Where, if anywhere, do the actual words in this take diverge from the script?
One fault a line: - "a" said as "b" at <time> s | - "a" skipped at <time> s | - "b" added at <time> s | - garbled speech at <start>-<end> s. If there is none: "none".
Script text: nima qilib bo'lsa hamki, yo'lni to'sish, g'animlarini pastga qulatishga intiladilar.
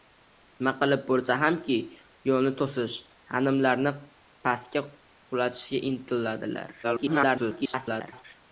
- garbled speech at 6.8-8.2 s